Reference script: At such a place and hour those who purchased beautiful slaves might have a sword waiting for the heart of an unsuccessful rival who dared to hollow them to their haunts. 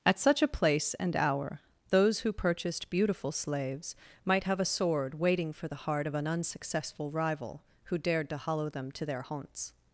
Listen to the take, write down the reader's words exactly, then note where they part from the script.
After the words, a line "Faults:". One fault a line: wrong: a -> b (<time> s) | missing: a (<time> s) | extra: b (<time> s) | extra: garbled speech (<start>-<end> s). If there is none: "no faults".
At such a place and hour those who purchased beautiful slaves might have a sword waiting for the heart of an unsuccessful rival who dared to hollow them to their haunts.
Faults:
no faults